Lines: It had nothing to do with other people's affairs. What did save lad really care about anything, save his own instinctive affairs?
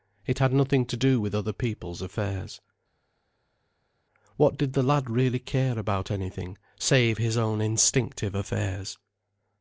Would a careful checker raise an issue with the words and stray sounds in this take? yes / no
yes